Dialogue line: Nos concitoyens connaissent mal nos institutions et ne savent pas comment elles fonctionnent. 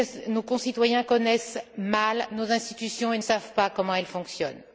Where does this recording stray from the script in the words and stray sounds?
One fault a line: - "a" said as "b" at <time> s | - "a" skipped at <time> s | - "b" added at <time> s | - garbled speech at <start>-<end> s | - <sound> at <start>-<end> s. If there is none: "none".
- "ne" skipped at 3.2 s